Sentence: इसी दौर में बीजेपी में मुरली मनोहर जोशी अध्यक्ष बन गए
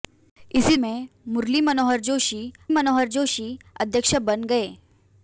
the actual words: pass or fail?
fail